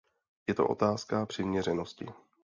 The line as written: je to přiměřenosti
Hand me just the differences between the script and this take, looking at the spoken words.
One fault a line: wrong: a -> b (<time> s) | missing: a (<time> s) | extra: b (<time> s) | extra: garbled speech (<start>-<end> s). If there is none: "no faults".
extra: otázka (0.7 s)